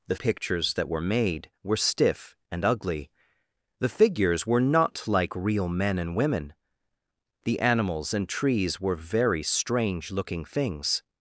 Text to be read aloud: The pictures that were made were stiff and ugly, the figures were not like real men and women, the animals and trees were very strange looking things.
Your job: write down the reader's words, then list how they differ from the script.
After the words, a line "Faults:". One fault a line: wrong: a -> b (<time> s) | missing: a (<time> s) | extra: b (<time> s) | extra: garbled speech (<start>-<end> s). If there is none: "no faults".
The pictures that were made were stiff and ugly, the figures were not like real men and women, the animals and trees were very strange looking things.
Faults:
no faults